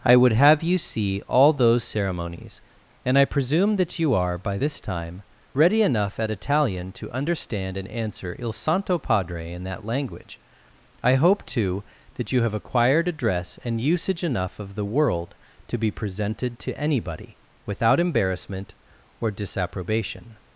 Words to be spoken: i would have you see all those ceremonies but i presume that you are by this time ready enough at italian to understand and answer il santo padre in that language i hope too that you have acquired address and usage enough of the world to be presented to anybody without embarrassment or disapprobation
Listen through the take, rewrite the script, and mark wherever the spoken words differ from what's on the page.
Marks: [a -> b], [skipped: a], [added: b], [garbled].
i would have you see all those ceremonies [but -> and] i presume that you are by this time ready enough at italian to understand and answer il santo padre in that language i hope too that you have acquired address and usage enough of the world to be presented to anybody without embarrassment or disapprobation